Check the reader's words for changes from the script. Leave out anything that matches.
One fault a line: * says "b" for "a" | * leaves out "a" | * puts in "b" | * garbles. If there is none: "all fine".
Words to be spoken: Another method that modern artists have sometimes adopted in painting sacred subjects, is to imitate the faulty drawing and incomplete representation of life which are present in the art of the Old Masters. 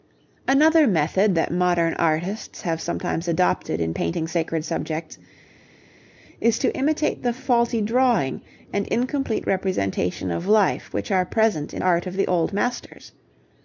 * leaves out "the"